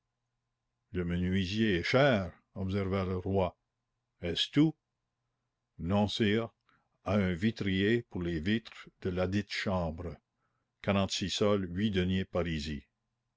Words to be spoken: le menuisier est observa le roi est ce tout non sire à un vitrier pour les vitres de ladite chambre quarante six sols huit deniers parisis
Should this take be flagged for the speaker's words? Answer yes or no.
yes